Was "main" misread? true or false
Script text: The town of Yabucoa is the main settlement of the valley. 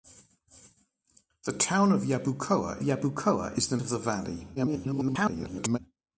true